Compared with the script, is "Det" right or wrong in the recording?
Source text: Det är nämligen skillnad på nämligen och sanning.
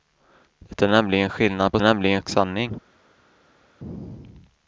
right